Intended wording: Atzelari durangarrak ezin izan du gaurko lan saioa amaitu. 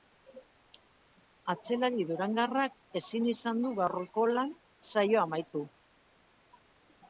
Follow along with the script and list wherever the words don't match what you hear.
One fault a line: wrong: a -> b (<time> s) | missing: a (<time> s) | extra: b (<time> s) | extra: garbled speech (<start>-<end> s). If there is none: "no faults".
no faults